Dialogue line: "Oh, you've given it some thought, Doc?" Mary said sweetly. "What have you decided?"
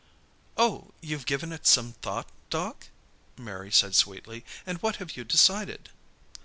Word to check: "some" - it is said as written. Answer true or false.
true